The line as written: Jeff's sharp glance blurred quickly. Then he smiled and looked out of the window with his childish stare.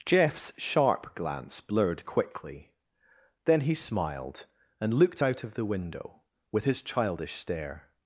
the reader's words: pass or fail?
pass